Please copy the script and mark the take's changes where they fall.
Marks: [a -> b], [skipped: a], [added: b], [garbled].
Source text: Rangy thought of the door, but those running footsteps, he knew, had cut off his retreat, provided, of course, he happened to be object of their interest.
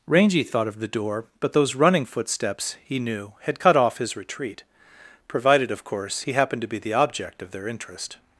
Rangy thought of the door, but those running footsteps, he knew, had cut off his retreat, provided, of course, he happened to be [added: the] object of their interest.